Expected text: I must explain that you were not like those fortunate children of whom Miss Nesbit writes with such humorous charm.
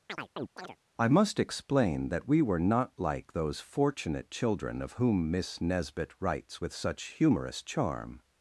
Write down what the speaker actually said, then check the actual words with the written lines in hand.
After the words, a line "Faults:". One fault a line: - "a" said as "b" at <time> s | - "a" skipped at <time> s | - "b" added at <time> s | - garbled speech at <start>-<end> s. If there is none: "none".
I must explain that we were not like those fortunate children of whom Miss Nesbit writes with such humorous charm.
Faults:
- "you" said as "we" at 2.3 s